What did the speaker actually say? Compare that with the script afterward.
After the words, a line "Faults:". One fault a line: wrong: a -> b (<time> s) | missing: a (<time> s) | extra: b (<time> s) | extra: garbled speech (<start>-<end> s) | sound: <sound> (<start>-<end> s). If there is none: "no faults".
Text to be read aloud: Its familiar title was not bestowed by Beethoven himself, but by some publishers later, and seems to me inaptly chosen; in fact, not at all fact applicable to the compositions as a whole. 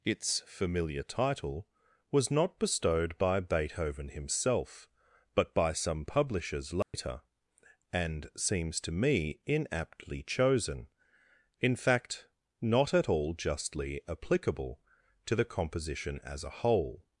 Its familiar title was not bestowed by Beethoven himself, but by some publishers later, and seems to me inaptly chosen; in fact, not at all justly applicable to the composition as a whole.
Faults:
sound: dropout (6.8-6.9 s)
wrong: fact -> justly (13.3 s)
wrong: compositions -> composition (15.4 s)